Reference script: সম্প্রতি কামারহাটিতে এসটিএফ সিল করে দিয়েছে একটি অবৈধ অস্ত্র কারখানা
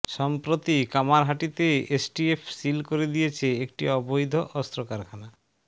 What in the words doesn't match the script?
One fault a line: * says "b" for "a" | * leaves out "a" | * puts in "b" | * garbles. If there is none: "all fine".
all fine